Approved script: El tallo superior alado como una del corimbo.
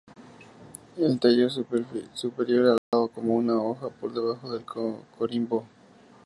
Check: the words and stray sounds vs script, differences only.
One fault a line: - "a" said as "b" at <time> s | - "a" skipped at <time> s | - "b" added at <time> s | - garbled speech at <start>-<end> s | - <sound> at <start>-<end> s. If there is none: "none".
- dropout at 2.8-2.9 s
- "hoja por debajo" added at 3.6 s